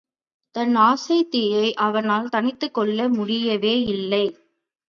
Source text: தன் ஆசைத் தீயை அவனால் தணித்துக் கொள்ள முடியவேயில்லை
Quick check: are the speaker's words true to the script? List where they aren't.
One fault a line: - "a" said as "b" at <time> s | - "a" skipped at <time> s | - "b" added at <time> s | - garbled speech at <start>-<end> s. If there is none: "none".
none